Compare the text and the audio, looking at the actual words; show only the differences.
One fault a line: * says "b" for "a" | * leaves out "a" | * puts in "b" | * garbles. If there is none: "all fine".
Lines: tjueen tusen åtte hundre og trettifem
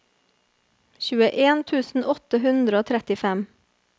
all fine